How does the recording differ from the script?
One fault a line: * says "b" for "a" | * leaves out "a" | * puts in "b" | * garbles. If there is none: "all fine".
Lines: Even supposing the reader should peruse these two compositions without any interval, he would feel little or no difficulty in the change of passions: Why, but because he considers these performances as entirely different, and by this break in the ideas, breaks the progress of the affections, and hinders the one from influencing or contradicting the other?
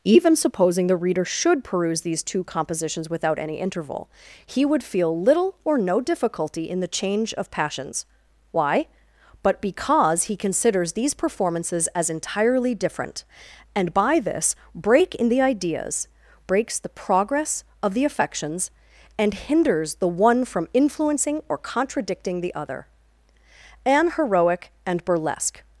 * puts in "An heroic and burlesque"